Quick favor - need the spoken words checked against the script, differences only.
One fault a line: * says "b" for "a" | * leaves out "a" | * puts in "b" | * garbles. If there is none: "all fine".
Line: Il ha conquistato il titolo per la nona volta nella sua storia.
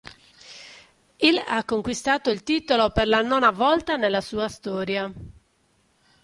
all fine